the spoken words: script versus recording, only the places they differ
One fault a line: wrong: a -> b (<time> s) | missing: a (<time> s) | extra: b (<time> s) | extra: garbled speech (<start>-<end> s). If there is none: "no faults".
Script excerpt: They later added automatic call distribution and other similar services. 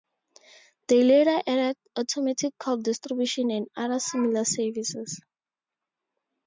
no faults